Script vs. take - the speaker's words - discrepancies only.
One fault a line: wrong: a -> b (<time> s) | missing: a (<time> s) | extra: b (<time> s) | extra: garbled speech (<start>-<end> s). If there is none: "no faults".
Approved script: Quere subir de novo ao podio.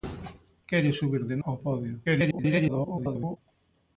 missing: novo (1.4 s)
extra: garbled speech (2.0-3.4 s)